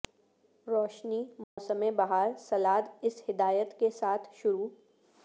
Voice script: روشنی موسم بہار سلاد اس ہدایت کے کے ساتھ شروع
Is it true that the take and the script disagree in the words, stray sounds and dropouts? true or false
true